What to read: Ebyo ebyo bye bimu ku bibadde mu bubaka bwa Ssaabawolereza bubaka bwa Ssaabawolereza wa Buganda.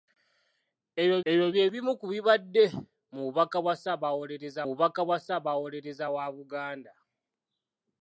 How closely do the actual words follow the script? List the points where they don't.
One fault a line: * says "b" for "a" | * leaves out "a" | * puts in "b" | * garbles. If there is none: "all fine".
all fine